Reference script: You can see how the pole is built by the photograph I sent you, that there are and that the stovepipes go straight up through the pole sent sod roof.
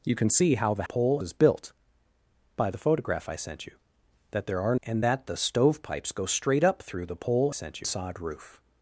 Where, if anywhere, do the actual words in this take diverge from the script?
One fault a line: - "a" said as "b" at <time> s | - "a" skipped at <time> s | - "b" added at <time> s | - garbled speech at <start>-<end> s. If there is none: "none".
none